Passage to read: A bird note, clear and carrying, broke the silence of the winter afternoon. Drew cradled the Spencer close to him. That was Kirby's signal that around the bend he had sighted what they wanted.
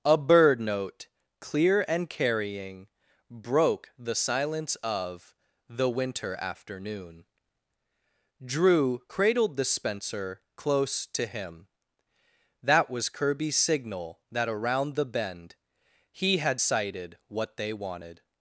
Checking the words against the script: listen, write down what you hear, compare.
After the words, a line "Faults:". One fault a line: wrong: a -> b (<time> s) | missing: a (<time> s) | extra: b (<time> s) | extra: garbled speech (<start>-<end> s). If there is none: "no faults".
A bird note, clear and carrying, broke the silence of the winter afternoon. Drew cradled the Spencer close to him. That was Kirby's signal that around the bend he had sighted what they wanted.
Faults:
no faults